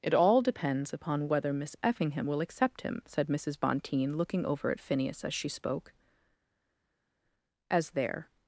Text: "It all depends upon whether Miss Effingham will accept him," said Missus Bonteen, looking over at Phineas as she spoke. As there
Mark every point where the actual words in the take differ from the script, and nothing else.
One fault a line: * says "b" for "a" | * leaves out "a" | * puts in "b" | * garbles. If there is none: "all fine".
all fine